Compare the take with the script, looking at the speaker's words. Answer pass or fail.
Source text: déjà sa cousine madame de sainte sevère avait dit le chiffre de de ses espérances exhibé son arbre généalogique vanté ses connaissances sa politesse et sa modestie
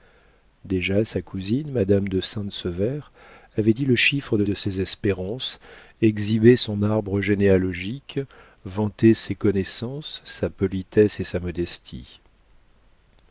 pass